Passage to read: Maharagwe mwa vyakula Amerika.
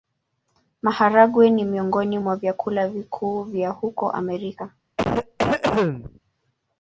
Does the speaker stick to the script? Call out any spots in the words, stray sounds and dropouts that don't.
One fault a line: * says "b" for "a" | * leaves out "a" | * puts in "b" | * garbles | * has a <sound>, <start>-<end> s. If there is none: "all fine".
* puts in "ni miongoni"
* puts in "vikuu vya huko"
* has a cough, 5.0-6.2 s